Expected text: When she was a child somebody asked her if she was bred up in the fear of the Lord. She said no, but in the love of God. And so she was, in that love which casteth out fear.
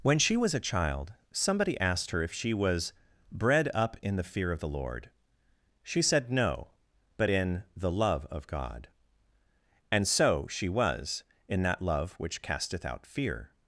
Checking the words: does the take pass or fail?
pass